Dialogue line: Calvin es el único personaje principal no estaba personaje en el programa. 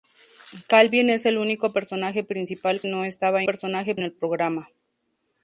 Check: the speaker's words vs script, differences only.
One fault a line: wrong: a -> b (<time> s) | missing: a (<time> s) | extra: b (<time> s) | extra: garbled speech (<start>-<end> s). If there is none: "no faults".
no faults